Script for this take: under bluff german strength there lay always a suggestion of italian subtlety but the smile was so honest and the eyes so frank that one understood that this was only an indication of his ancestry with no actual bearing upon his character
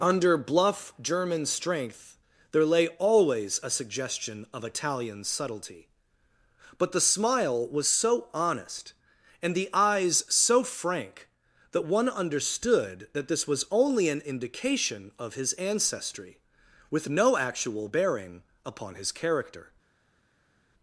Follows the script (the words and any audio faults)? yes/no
yes